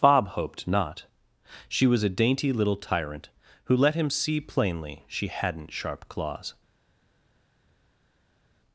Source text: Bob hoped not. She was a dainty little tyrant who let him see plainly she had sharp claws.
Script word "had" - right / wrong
wrong